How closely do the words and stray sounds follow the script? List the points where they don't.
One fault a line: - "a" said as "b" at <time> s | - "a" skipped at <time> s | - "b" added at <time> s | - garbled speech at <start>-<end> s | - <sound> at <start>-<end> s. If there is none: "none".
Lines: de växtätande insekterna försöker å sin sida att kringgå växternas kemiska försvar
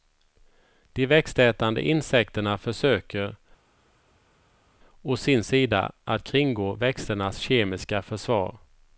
none